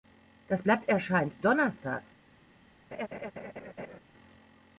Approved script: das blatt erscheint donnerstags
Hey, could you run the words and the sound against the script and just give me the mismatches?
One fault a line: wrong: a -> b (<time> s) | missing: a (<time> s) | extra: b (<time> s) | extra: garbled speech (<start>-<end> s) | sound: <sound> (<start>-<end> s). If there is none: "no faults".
sound: laugh (2.9-4.0 s)